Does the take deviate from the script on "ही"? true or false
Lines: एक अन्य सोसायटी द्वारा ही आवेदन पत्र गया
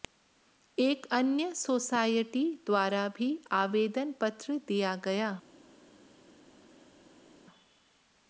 true